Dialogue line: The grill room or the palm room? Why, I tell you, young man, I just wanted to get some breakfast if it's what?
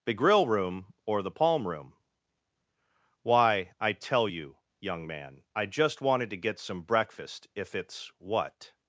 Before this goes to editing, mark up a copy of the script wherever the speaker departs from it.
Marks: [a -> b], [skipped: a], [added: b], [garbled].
The grill room or the palm room? Why, I tell you, young man, I just wanted to get some breakfast if it's what?